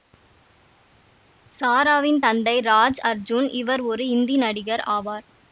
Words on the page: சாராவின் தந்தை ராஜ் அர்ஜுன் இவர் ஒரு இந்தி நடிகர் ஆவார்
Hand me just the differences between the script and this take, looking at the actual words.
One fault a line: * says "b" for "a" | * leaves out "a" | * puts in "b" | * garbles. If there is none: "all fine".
all fine